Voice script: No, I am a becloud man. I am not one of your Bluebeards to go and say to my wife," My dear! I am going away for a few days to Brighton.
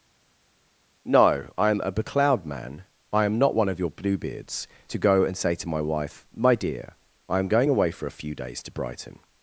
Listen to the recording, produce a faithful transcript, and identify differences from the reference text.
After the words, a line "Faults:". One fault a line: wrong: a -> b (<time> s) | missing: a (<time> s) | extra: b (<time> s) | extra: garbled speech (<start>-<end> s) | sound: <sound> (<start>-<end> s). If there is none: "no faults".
No, I am a becloud man. I am not one of your Bluebeards to go and say to my wife," My dear! I am going away for a few days to Brighton.
Faults:
no faults